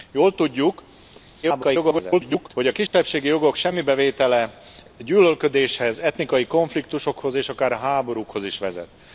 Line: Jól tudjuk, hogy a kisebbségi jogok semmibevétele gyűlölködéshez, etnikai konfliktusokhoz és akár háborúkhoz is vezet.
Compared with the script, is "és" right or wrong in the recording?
right